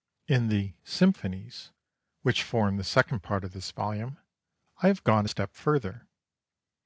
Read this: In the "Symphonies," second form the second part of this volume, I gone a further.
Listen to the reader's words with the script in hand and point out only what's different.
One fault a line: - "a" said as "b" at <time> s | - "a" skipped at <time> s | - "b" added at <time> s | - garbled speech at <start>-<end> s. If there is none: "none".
- "second" said as "which" at 2.2 s
- "have" added at 4.9 s
- "step" added at 5.2 s